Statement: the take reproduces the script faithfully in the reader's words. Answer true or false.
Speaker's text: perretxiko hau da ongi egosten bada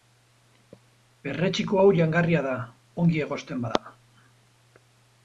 false